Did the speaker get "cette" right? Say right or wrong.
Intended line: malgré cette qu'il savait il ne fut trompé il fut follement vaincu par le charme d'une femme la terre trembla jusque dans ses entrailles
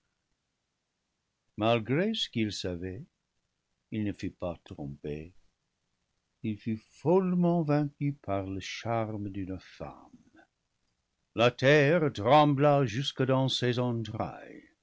wrong